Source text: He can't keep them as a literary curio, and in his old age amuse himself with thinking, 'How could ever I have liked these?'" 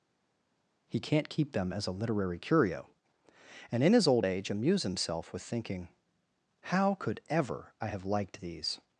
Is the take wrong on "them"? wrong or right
right